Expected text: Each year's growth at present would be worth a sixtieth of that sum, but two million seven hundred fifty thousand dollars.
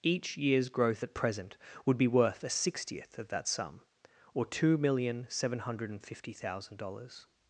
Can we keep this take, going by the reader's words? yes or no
no